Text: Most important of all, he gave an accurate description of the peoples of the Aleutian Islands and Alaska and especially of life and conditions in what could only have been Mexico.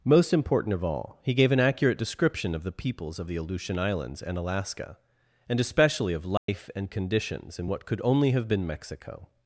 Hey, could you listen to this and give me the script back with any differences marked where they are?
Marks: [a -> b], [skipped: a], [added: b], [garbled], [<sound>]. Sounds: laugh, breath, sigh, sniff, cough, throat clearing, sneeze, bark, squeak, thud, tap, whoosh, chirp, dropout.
Most important of all, he gave an accurate description of the peoples of the Aleutian Islands and Alaska and especially of life [dropout] and conditions in what could only have been Mexico.